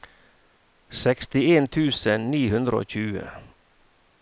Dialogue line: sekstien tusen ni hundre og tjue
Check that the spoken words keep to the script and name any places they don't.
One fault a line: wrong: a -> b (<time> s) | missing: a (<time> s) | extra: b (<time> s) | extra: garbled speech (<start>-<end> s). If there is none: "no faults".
no faults